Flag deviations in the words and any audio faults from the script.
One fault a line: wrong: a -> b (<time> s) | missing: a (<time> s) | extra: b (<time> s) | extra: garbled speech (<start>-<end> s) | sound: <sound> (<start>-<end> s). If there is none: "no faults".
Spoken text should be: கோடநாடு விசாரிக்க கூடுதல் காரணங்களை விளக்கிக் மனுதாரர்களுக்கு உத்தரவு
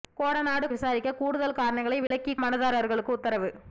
sound: dropout (2.1-2.1 s)